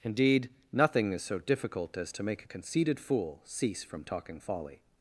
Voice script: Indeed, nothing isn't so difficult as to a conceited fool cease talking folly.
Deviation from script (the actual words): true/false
true